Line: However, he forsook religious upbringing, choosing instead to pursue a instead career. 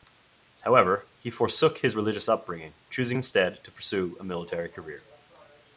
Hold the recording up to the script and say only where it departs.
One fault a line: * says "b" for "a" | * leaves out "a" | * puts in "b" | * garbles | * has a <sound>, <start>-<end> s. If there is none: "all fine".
* puts in "his"
* says "military" for "instead"